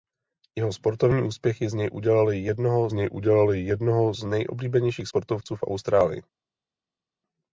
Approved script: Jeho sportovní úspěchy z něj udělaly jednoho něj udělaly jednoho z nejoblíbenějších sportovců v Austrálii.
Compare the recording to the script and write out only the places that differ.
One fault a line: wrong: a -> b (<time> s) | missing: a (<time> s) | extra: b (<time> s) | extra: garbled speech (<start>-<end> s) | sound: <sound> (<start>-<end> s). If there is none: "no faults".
no faults